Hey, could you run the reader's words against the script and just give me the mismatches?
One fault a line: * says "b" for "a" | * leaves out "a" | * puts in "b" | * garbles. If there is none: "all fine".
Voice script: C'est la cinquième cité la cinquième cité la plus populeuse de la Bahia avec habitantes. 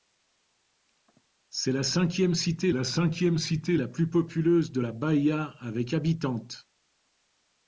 all fine